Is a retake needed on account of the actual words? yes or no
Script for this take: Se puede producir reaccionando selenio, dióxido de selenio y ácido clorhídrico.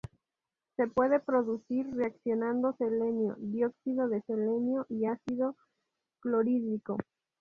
no